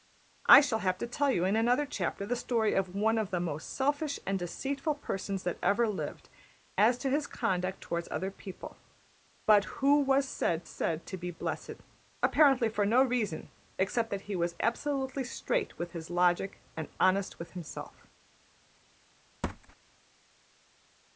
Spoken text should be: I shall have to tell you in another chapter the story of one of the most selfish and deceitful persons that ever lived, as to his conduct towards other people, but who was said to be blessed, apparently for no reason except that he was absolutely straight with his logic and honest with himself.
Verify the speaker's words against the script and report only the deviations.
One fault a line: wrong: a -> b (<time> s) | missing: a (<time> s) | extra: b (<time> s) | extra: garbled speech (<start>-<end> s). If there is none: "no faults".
extra: said (10.6 s)